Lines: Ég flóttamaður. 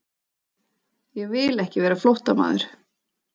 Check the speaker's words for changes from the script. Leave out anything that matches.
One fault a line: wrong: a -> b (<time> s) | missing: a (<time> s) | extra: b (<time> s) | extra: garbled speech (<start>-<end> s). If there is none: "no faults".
extra: vil ekki vera (1.3 s)